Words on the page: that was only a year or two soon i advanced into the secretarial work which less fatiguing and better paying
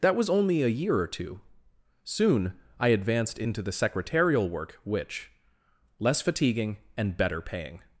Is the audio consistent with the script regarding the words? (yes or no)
yes